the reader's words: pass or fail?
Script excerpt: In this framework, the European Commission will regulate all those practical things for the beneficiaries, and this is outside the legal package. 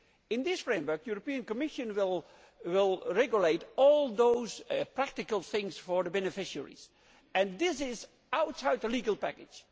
pass